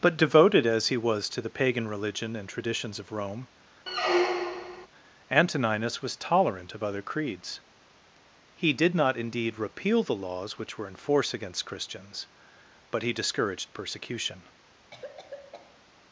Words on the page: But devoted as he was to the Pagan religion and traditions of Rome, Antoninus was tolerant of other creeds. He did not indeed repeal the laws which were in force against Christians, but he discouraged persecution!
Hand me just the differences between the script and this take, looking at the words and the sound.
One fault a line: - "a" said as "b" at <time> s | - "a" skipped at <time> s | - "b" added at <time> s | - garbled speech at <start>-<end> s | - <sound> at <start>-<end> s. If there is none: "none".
- squeak at 3.9-4.9 s
- cough at 14.9-15.9 s